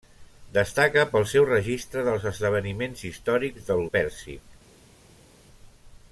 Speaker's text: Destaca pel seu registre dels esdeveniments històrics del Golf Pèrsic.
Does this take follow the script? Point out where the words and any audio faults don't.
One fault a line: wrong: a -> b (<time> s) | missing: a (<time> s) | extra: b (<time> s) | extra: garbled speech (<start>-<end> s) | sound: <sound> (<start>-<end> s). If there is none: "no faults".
missing: Golf (3.9 s)